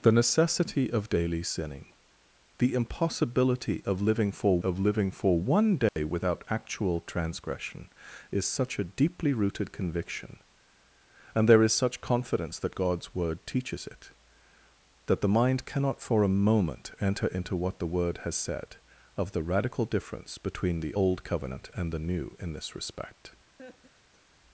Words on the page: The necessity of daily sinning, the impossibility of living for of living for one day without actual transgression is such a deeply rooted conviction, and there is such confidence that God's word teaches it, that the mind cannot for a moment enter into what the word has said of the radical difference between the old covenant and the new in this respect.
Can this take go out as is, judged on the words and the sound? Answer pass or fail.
fail